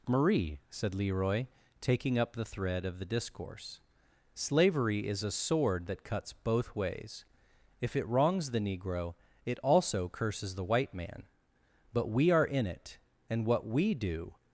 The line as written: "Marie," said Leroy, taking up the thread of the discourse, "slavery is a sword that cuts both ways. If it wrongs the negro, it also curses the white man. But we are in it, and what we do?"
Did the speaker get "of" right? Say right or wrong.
right